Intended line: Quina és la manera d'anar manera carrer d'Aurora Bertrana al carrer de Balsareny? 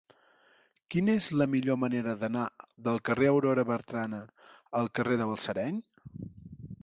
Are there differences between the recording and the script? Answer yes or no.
yes